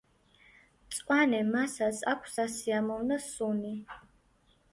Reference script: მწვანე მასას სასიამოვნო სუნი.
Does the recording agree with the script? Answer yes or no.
no